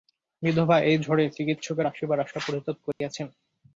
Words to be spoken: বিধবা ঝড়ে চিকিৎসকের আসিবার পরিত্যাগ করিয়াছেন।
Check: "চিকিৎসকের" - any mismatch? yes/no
no